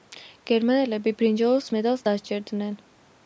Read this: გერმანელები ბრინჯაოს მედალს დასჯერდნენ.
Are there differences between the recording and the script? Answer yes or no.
no